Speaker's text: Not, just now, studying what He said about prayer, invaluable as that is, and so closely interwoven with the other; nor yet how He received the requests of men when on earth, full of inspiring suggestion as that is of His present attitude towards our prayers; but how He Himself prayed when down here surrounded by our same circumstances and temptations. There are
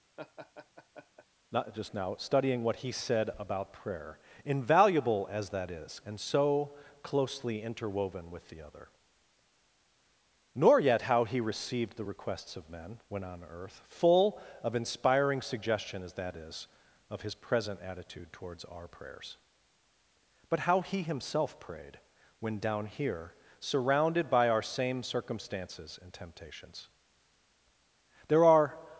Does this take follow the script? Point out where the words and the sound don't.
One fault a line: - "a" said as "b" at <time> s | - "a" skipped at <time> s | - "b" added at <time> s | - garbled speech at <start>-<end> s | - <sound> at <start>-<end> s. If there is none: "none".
- laugh at 0.2-1.3 s